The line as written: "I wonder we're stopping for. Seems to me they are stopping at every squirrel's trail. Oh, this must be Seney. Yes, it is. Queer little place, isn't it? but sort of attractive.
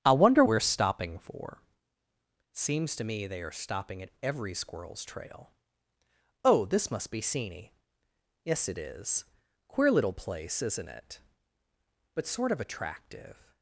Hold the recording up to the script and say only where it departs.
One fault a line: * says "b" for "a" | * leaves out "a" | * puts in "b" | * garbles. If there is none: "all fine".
all fine